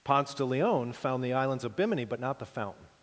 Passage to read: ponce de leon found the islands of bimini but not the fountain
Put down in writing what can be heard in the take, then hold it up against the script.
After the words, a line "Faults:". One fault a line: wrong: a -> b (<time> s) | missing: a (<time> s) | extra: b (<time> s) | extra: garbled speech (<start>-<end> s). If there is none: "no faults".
ponce de leon found the islands of bimini but not the fountain
Faults:
no faults